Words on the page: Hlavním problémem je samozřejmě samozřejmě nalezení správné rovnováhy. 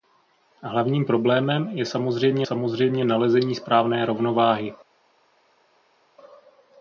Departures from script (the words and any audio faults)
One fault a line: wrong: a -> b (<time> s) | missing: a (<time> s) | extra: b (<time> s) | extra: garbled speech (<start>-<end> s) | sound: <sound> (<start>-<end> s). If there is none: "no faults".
no faults